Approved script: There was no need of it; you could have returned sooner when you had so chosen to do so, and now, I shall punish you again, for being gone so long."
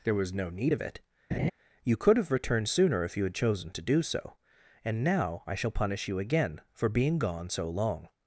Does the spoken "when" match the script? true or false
false